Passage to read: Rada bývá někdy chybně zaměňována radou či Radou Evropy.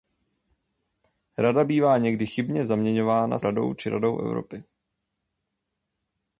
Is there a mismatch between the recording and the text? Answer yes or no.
no